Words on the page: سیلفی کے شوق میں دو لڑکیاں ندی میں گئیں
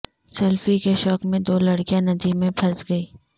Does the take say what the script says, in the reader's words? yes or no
no